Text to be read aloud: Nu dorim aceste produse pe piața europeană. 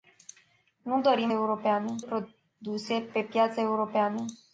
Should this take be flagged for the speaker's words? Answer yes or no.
yes